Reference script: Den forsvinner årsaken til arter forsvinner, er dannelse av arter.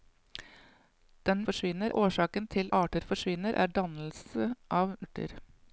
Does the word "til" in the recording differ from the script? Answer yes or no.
no